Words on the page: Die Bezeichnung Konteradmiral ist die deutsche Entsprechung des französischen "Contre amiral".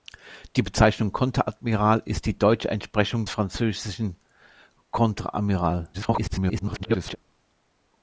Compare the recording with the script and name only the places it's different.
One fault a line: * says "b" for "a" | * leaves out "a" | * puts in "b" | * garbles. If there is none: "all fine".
* leaves out "des"
* garbles